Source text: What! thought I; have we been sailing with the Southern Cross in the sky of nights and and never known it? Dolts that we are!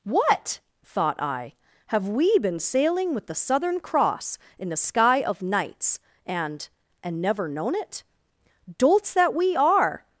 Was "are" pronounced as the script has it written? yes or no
yes